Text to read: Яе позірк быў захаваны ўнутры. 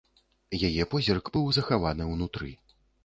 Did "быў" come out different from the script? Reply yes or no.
no